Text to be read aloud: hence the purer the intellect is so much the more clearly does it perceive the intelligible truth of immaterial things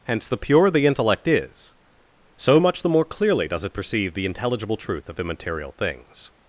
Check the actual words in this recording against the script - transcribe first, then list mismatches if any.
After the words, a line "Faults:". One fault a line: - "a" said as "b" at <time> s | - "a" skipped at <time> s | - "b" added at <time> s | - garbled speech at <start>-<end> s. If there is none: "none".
hence the purer the intellect is so much the more clearly does it perceive the intelligible truth of immaterial things
Faults:
none